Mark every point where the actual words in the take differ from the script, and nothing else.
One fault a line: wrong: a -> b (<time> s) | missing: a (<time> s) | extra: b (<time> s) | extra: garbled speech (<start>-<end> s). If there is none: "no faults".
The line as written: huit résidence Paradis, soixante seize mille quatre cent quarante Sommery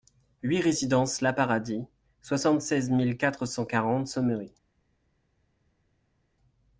extra: la (1.2 s)